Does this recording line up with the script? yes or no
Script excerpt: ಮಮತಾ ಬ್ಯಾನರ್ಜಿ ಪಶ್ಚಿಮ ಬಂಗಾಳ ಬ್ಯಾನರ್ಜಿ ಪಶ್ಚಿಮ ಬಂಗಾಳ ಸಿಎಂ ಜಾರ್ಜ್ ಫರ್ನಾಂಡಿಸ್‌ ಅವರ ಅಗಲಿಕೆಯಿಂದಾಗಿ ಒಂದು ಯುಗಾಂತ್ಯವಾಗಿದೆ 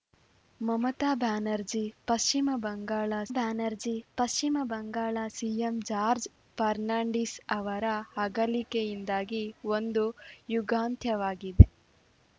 yes